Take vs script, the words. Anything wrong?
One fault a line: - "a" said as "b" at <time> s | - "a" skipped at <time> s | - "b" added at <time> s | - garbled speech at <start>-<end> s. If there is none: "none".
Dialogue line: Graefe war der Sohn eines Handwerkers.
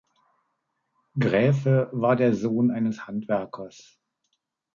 none